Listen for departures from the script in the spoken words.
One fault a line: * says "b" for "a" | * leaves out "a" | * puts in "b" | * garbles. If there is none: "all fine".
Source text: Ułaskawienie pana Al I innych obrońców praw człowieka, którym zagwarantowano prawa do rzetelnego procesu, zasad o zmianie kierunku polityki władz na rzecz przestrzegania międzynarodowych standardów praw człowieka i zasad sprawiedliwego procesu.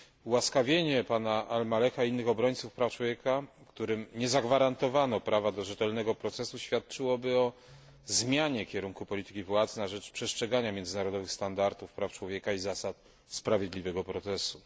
* puts in "Maleha"
* puts in "nie"
* says "świadczyłoby" for "zasad"